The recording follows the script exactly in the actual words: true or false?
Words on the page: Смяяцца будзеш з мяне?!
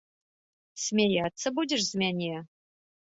true